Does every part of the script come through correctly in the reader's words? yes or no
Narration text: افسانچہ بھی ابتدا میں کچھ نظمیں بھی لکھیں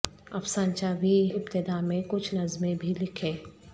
yes